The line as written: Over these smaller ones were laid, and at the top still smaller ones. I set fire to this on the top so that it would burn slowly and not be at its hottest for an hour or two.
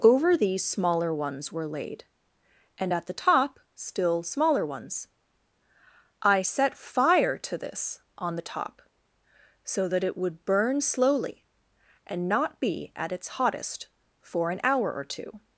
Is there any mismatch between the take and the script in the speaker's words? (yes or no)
no